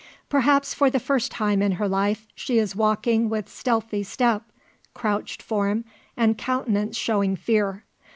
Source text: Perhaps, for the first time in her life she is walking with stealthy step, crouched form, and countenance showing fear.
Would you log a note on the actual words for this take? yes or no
no